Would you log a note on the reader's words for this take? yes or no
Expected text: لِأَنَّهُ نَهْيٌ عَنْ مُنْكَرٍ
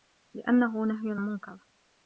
yes